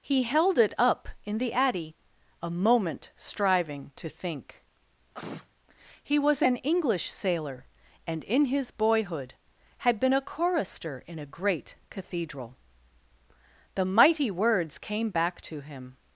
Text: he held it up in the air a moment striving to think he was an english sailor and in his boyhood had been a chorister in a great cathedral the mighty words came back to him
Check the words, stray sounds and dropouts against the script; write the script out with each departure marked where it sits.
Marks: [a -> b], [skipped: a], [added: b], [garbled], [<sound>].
he held it up in the [air -> addy] a moment striving to think [sneeze] he was an english sailor and in his boyhood had been a chorister in a great cathedral the mighty words came back to him